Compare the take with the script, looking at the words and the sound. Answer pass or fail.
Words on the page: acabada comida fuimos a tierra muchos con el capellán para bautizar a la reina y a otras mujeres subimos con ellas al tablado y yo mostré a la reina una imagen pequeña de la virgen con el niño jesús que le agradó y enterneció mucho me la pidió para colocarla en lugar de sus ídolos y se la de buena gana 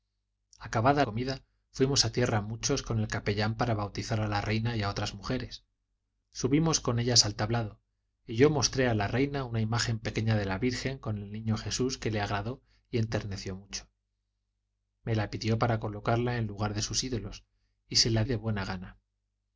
pass